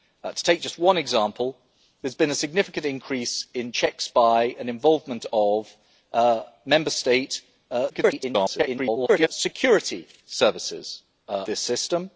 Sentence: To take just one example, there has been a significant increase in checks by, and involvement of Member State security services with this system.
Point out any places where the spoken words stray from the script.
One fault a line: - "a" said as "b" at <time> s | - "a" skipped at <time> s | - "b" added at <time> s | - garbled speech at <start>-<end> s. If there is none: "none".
- garbled speech at 7.9-9.3 s
- "with" skipped at 11.0 s